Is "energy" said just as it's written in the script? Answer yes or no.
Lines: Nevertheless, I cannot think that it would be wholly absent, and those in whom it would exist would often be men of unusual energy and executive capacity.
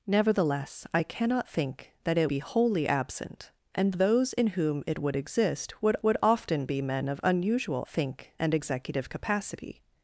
no